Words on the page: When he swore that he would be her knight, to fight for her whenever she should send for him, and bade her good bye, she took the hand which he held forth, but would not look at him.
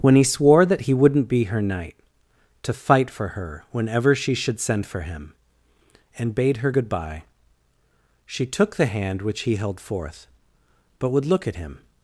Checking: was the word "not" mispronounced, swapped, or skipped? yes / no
yes